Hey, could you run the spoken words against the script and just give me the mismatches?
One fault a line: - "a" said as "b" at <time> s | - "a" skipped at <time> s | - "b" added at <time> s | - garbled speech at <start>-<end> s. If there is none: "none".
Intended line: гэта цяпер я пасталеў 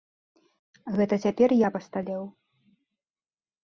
none